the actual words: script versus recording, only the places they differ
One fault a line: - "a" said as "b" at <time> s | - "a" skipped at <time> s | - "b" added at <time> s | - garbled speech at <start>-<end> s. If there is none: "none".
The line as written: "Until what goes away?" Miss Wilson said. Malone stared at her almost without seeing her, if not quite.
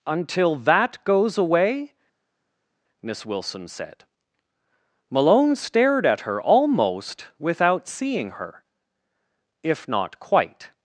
- "what" said as "that" at 0.6 s